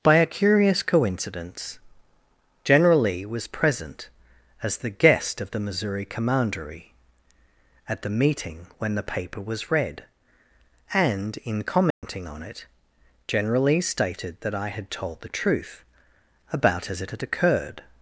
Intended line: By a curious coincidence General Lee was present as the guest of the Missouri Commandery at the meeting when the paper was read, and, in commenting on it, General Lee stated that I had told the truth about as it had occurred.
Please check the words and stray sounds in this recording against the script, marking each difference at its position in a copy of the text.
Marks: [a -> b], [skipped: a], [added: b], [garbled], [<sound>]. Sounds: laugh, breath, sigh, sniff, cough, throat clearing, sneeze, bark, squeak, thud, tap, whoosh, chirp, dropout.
By a curious coincidence General Lee was present as the guest of the Missouri Commandery at the meeting when the paper was read, and, in commenting [dropout] on it, General Lee stated that I had told the truth about as it had occurred.